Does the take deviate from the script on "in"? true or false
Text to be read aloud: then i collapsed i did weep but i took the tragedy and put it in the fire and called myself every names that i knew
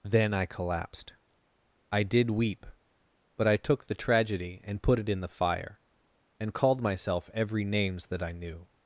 false